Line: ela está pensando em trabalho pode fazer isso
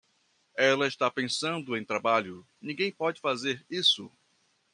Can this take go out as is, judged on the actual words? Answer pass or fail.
fail